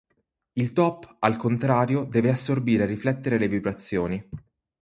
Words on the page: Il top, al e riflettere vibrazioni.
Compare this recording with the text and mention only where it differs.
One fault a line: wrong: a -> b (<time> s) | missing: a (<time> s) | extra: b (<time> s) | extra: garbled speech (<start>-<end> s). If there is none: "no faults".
extra: contrario deve assorbire (1.4 s)
extra: le (3.4 s)